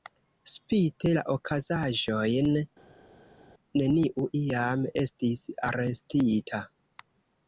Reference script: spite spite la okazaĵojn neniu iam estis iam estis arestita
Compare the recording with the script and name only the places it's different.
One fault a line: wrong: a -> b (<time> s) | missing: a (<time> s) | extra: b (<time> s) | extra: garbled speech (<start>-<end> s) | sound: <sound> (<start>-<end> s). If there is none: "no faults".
missing: spite (1.1 s)
missing: iam estis (5.4 s)